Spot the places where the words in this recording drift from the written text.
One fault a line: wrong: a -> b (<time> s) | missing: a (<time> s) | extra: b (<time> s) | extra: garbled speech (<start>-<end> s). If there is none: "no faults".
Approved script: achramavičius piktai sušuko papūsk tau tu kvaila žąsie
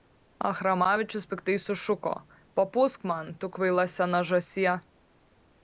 wrong: tau -> man (3.1 s)
extra: sena (4.0 s)